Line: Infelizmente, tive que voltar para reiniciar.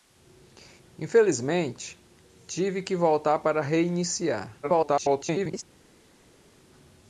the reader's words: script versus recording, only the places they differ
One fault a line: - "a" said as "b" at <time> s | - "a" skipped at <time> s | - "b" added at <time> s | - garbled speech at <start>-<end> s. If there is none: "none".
- garbled speech at 4.6-5.6 s